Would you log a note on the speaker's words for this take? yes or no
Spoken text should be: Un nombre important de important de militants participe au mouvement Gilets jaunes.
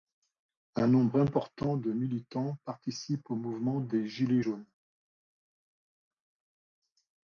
yes